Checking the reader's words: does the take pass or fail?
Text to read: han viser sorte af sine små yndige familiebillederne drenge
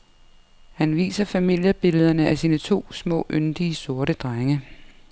fail